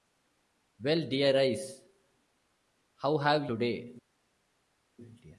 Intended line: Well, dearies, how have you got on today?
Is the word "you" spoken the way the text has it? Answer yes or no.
no